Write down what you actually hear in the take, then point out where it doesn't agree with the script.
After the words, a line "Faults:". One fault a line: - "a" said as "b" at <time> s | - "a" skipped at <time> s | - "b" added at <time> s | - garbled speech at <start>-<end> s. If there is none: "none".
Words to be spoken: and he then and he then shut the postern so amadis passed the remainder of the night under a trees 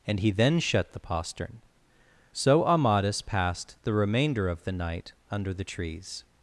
and he then shut the postern so amadis passed the remainder of the night under the trees
Faults:
- "and he then" skipped at 0.6 s
- "a" said as "the" at 5.5 s